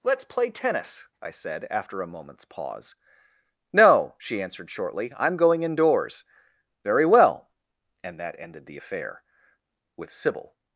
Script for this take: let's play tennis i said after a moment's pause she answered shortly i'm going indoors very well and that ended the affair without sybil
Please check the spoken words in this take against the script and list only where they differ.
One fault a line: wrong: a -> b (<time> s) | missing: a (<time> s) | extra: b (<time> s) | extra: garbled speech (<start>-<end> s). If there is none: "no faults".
extra: no (3.7 s)
wrong: without -> with (10.0 s)